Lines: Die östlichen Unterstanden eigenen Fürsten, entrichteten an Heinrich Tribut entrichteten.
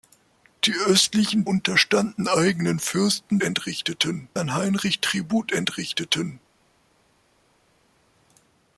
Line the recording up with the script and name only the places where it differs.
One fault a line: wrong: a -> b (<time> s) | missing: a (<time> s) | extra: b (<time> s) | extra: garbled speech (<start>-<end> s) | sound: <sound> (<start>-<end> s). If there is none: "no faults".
no faults